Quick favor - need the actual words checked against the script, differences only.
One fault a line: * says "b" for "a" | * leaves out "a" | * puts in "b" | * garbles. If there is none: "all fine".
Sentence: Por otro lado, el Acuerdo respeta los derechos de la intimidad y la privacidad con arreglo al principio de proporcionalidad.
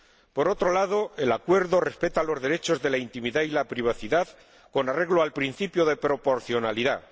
all fine